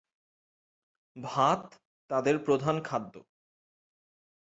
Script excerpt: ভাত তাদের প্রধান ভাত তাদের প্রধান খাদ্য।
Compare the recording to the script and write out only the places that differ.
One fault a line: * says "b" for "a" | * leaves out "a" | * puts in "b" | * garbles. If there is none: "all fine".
* leaves out "ভাত তাদের প্রধান"